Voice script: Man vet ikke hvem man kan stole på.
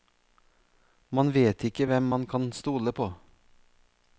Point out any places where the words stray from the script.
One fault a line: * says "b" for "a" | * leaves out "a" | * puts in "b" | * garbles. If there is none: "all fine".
all fine